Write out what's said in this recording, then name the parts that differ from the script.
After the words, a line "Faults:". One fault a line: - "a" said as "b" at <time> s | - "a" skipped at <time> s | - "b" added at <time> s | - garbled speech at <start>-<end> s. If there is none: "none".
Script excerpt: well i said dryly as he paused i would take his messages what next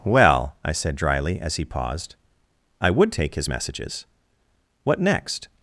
well i said dryly as he paused i would take his messages what next
Faults:
none